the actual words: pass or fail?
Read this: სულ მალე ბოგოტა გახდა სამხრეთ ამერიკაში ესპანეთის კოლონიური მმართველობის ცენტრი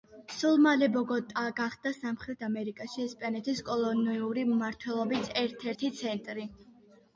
fail